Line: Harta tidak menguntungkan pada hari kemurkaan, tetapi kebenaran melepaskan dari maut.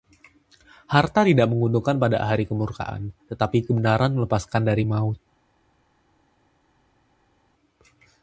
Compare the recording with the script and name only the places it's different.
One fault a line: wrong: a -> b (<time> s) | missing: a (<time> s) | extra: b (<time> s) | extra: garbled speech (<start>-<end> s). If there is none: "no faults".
no faults